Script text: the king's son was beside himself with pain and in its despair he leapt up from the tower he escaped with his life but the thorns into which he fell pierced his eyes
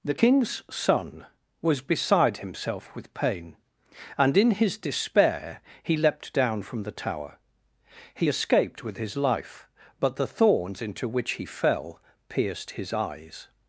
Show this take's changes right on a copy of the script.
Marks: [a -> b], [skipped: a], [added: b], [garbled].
the king's son was beside himself with pain and in [its -> his] despair he leapt [up -> down] from the tower he escaped with his life but the thorns into which he fell pierced his eyes